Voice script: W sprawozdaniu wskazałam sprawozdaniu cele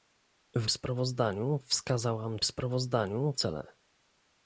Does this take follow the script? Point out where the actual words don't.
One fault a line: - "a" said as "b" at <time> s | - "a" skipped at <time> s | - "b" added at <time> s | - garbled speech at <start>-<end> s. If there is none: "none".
none